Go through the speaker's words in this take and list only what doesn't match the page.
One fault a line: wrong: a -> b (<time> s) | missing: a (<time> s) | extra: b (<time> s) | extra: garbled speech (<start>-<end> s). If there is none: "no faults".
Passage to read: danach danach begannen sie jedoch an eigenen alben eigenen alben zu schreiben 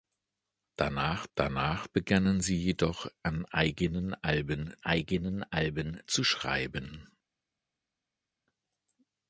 no faults